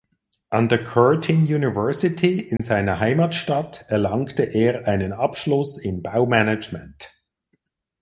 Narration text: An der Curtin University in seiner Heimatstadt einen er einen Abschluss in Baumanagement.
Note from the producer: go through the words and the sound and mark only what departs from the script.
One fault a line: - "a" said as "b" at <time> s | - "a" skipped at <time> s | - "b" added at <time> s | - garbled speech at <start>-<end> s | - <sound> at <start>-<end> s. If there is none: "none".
- dropout at 2.6-2.6 s
- "einen" said as "erlangte" at 3.9 s